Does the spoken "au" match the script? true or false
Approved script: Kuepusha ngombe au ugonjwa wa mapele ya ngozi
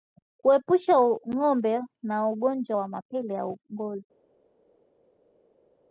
false